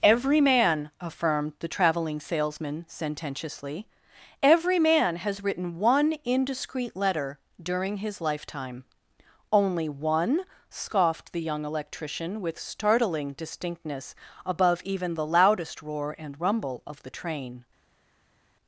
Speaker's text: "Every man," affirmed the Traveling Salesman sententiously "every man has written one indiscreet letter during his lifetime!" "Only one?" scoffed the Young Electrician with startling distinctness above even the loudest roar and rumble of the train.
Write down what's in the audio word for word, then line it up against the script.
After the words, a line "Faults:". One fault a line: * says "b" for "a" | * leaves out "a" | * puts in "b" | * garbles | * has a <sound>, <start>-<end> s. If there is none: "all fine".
"Every man," affirmed the Traveling Salesman sententiously "every man has written one indiscreet letter during his lifetime!" "Only one?" scoffed the Young Electrician with startling distinctness above even the loudest roar and rumble of the train.
Faults:
all fine